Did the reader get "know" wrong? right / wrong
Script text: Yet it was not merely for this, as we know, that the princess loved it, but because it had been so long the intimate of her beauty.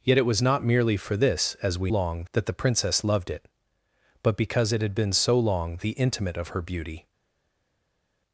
wrong